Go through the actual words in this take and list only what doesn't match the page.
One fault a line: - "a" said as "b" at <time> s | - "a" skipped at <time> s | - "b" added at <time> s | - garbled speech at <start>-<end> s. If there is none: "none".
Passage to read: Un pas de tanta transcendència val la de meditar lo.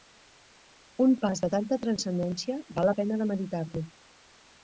- "pena" added at 3.0 s